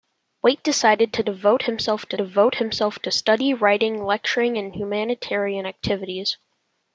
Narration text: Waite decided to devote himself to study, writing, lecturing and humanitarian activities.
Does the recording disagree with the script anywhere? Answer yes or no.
yes